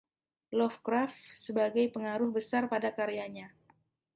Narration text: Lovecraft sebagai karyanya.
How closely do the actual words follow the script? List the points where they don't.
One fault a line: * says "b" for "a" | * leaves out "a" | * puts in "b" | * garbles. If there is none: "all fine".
* puts in "pengaruh besar pada"